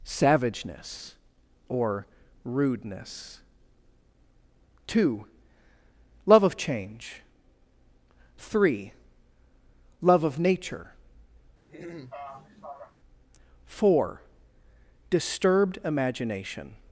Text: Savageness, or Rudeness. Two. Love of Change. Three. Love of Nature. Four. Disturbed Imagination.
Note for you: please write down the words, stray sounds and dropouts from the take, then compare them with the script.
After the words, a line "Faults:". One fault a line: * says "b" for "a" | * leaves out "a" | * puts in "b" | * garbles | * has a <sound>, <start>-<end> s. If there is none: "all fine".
Savageness, or Rudeness. Two. Love of Change. Three. Love of Nature. Four. Disturbed Imagination.
Faults:
* has a throat clearing, 11.7-13.0 s